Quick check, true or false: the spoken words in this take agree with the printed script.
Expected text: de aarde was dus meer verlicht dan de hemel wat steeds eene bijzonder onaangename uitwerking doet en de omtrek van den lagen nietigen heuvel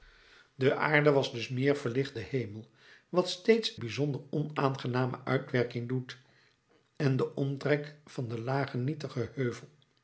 false